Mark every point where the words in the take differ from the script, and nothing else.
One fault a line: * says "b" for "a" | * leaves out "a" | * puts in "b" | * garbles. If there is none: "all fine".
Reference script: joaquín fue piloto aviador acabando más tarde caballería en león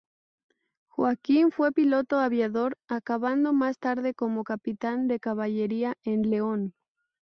* puts in "como capitán de"